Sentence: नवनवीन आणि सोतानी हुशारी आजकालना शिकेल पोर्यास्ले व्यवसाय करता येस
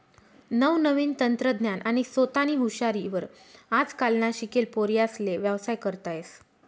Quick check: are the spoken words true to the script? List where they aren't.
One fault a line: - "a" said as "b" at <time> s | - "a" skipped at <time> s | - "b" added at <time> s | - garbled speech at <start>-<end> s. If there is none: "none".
- "तंत्रज्ञान" added at 1.2 s
- "वर" added at 3.1 s